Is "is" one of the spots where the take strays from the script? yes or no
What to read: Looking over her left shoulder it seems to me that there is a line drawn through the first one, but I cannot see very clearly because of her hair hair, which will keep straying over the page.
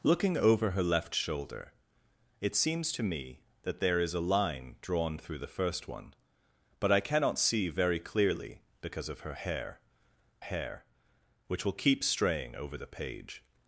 no